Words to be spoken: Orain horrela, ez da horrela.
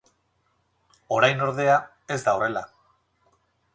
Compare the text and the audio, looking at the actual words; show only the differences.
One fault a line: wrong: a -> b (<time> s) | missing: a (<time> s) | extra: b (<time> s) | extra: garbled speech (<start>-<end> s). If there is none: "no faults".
wrong: horrela -> ordea (1.5 s)